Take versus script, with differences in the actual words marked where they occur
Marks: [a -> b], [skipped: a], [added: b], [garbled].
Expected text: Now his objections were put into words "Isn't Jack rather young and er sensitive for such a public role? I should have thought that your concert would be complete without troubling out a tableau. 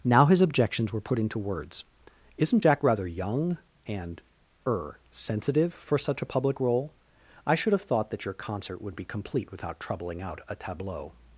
Now his objections were put into words "Isn't Jack rather young and er sensitive for such a public role? I should have thought that your concert would be complete without troubling out a tableau.